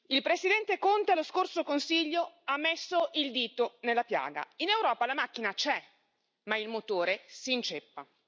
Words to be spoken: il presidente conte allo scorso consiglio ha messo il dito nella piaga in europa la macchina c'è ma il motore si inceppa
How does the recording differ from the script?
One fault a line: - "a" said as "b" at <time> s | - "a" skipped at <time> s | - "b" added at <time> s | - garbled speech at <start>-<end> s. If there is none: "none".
none